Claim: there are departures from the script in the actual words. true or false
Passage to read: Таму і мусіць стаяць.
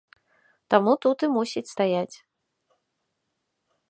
true